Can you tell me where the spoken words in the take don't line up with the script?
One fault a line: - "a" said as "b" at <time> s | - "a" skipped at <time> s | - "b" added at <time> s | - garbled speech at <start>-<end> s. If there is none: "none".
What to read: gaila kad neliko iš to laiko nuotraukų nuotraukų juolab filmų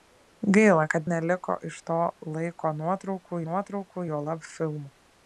none